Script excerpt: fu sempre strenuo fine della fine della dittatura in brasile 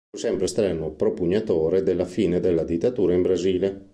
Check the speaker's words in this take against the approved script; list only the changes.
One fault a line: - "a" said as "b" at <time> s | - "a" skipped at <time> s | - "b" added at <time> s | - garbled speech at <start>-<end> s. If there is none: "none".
- "fine" said as "propugnatore" at 0.9 s